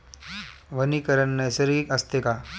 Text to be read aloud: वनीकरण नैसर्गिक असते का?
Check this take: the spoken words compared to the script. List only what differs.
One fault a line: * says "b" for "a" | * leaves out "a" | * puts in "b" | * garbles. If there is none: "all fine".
all fine